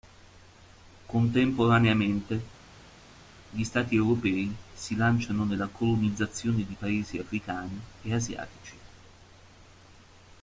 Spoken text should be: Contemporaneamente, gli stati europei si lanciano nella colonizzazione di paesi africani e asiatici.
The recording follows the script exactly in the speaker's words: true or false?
true